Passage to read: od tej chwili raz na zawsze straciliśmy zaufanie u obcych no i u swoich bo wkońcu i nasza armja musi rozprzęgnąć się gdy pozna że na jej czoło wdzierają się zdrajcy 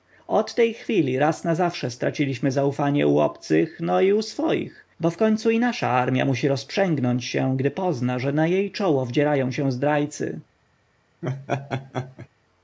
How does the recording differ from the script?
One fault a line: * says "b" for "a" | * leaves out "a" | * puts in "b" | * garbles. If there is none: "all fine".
all fine